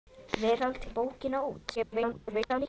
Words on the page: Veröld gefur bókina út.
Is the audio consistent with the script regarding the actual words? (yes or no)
no